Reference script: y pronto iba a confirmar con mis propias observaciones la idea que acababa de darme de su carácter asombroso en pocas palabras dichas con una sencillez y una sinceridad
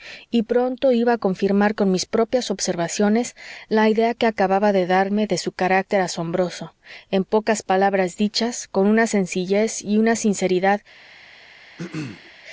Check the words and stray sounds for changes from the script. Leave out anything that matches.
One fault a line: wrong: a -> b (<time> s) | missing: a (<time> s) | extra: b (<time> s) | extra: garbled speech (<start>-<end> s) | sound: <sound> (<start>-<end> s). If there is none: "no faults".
sound: throat clearing (11.8-12.3 s)